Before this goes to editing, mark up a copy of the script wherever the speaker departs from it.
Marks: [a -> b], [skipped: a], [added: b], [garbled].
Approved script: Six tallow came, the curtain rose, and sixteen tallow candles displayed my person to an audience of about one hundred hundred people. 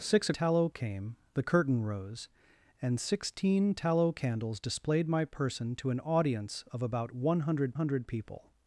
Six tallow came, the curtain rose, and sixteen tallow candles displayed my person to an audience of about one hundred hundred people.